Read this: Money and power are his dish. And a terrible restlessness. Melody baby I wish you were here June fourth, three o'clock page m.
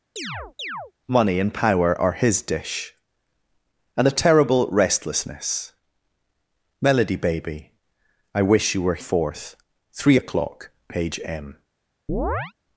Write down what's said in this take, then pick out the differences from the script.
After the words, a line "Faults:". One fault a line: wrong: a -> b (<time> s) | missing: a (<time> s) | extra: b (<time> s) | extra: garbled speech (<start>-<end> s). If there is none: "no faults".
Money and power are his dish. And a terrible restlessness. Melody baby I wish you were fourth, three o'clock page m.
Faults:
missing: here June (9.0 s)